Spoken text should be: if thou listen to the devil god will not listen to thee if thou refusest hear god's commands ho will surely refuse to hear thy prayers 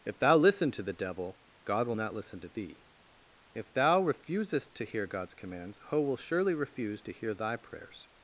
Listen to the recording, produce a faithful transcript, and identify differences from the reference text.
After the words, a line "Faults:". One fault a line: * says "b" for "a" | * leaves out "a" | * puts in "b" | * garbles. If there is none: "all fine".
if thou listen to the devil god will not listen to thee if thou refusest to hear god's commands ho will surely refuse to hear thy prayers
Faults:
* puts in "to"